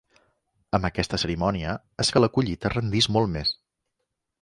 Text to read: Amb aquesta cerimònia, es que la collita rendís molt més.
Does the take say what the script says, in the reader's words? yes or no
yes